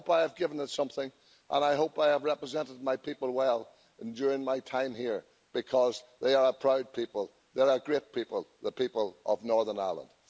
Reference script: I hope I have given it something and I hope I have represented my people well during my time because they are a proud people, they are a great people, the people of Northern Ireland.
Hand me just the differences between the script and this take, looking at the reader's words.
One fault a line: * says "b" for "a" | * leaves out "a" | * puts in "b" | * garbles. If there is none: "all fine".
* puts in "here"